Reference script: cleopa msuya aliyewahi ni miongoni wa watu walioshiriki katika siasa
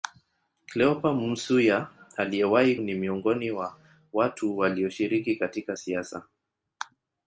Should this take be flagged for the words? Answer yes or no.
no